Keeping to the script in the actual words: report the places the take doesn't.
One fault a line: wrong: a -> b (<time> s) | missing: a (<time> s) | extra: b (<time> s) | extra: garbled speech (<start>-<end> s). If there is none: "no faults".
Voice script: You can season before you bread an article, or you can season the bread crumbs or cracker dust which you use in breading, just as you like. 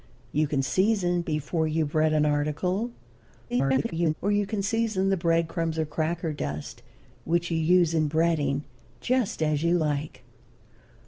extra: garbled speech (3.5-4.1 s)